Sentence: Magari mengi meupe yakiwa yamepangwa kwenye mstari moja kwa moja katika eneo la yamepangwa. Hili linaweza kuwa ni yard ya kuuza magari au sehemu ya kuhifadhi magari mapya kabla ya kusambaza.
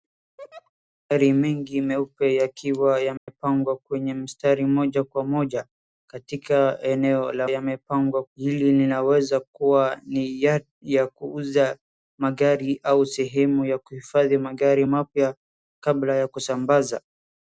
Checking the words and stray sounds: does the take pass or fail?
fail